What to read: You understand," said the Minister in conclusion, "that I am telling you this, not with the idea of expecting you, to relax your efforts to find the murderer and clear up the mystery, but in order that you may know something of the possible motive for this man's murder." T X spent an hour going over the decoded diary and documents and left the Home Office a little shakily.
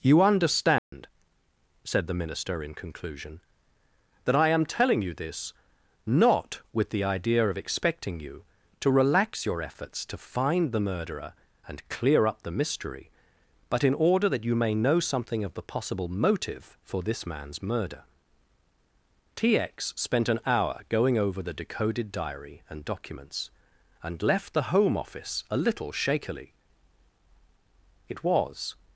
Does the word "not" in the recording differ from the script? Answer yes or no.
no